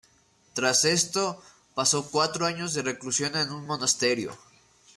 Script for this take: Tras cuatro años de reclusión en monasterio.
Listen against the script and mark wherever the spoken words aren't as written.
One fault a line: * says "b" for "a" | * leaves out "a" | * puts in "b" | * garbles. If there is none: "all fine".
* puts in "esto pasó"
* puts in "un"